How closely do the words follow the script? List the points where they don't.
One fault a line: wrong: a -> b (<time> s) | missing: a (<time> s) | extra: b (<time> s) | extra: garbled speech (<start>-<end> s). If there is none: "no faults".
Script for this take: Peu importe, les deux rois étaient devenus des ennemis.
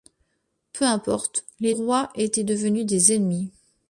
missing: deux (1.8 s)